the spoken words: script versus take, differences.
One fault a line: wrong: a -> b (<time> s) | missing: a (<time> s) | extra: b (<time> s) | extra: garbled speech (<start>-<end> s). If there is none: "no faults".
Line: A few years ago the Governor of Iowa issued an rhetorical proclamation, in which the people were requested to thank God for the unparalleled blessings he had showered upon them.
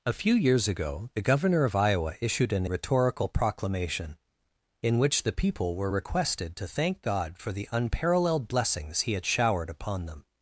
no faults